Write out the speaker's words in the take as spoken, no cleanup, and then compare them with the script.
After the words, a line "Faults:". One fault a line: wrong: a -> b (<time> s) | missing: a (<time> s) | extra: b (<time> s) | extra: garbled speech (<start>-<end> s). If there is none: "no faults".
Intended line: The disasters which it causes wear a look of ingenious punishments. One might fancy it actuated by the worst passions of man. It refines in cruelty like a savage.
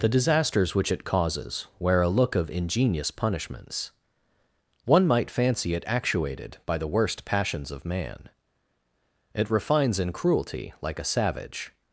The disasters which it causes wear a look of ingenious punishments. One might fancy it actuated by the worst passions of man. It refines in cruelty like a savage.
Faults:
no faults